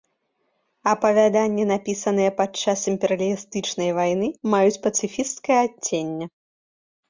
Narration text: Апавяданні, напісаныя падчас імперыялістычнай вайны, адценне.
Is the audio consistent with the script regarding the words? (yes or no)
no